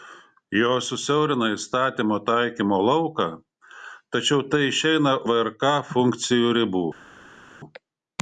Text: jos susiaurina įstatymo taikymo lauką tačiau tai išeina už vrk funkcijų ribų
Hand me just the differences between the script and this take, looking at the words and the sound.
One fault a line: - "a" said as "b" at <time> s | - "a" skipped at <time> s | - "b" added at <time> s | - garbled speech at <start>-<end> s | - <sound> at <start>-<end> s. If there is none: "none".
- "už" skipped at 5.1 s